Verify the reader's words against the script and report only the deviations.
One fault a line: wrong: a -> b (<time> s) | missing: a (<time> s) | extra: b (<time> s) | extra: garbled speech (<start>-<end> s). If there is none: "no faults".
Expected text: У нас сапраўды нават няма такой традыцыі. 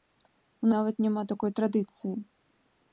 missing: нас сапраўды (0.7 s)